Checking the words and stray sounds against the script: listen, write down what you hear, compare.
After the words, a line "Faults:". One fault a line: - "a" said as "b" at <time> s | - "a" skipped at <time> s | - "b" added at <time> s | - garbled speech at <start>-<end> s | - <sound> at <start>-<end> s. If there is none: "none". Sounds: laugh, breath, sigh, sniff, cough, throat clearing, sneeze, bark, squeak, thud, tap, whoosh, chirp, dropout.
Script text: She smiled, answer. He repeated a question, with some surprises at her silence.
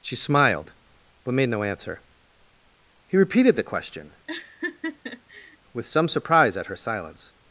She smiled, but made no answer. He repeated the question, with some surprise at her silence.
Faults:
- "but made no" added at 1.2 s
- "a" said as "the" at 3.6 s
- laugh at 4.3-5.6 s
- "surprises" said as "surprise" at 6.1 s